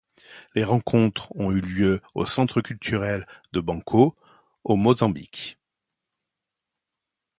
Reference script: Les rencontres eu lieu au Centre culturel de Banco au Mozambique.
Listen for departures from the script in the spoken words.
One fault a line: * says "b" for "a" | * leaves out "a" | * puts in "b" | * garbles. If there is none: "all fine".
* puts in "ont"